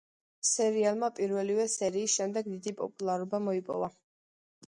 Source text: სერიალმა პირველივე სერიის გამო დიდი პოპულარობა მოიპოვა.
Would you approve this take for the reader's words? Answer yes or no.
no